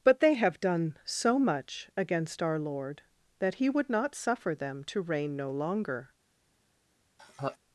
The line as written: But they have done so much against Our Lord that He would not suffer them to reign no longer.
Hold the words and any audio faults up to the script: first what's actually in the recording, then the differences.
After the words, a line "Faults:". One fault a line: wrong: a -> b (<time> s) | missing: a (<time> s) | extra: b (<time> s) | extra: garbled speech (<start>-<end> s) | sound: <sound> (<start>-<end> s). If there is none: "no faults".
But they have done so much against Our Lord that He would not suffer them to reign no longer.
Faults:
sound: laugh (7.2-7.6 s)